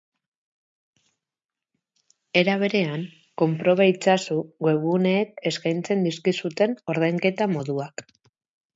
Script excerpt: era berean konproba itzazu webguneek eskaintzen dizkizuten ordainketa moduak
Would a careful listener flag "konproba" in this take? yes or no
no